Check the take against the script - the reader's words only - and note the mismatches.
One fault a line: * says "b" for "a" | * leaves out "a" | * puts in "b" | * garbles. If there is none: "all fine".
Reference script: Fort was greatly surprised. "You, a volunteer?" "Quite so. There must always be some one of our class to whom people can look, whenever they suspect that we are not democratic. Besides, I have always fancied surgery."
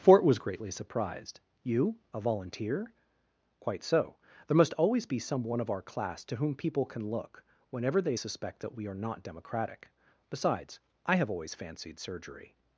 all fine